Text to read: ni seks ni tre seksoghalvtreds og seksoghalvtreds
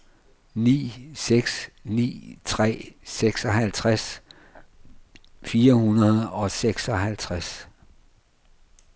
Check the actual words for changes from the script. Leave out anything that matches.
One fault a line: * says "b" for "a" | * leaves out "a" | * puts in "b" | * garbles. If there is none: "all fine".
* puts in "fire hundrede"